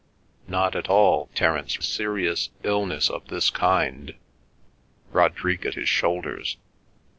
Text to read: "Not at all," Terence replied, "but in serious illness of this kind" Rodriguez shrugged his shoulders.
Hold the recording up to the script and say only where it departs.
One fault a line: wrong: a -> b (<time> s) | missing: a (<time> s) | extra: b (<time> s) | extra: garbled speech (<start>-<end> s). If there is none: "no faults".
missing: replied but in (1.8 s)
missing: shrugged (5.7 s)